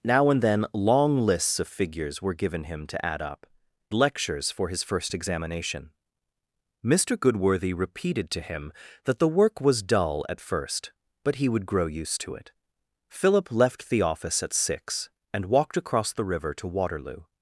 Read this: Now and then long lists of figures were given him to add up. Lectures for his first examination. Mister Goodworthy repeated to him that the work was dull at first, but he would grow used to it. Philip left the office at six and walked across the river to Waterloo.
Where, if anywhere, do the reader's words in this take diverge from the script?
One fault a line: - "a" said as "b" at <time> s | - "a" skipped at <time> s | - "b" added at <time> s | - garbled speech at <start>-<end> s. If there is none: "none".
none